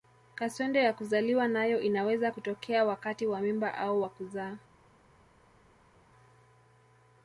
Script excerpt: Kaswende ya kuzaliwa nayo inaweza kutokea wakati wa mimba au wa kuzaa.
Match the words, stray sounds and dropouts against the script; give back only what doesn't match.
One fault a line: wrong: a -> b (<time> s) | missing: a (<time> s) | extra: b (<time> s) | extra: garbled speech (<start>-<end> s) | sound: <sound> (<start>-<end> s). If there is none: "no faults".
no faults